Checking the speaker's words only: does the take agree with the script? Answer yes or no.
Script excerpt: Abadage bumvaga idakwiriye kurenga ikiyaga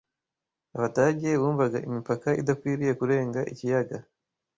no